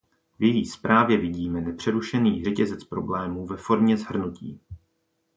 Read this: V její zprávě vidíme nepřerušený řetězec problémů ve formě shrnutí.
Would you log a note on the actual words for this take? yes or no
no